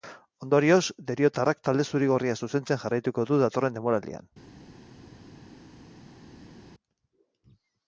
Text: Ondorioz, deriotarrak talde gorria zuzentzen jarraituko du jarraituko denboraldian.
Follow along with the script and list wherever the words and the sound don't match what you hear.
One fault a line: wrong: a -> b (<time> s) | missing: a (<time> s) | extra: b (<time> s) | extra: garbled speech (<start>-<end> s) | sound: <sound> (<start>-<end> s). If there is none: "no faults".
extra: zuri (1.9 s)
wrong: jarraituko -> datorren (3.5 s)